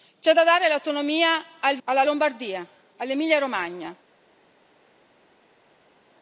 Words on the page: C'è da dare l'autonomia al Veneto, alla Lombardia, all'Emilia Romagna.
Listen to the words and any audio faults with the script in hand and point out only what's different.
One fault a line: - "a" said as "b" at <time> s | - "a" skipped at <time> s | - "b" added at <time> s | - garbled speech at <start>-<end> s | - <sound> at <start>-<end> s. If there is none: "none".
- "Veneto" skipped at 1.8 s